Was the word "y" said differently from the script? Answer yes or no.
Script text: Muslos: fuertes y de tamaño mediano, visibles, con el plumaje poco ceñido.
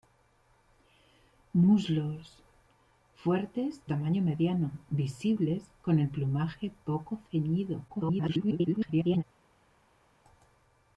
yes